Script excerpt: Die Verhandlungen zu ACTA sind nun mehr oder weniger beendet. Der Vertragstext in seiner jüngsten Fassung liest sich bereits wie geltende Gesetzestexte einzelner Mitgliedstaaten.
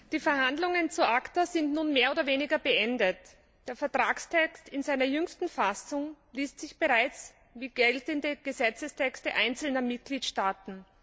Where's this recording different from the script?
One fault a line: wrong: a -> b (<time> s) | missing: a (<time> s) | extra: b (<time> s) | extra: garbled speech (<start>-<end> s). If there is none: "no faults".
no faults